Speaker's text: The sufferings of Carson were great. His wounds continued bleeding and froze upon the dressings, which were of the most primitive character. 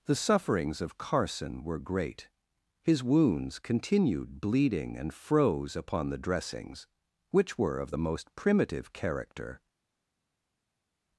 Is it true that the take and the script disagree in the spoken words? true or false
false